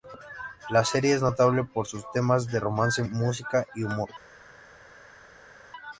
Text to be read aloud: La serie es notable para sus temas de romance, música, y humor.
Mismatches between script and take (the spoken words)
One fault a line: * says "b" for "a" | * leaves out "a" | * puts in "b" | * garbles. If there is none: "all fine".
* says "por" for "para"